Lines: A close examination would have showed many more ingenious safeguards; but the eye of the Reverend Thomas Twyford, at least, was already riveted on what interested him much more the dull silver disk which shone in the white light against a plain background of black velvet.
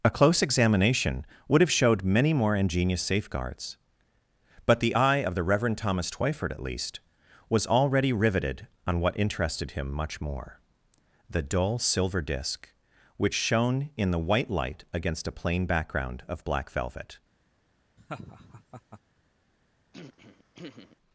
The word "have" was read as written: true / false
true